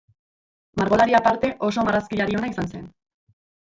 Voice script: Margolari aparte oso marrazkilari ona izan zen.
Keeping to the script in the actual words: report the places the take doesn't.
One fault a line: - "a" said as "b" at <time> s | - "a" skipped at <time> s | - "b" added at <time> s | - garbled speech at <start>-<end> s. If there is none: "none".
none